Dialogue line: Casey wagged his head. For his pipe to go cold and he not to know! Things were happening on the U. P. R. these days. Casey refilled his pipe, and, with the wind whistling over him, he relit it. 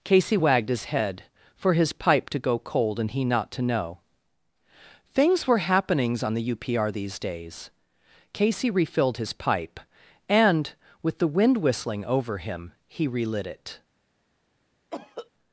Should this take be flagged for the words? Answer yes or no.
yes